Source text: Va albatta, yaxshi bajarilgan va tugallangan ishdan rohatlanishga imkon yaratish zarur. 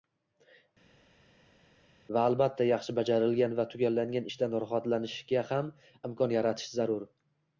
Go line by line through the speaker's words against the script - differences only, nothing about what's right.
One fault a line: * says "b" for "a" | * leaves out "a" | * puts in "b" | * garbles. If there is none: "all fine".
* puts in "ham"